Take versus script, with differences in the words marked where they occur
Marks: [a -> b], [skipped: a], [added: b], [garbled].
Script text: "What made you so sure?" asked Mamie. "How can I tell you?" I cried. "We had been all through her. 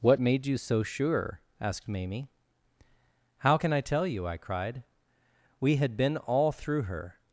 "What made you so sure?" asked Mamie. "How can I tell you?" I cried. "We had been all through her.